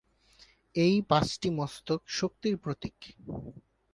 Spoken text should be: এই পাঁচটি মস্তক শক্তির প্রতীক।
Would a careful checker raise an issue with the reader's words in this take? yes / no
no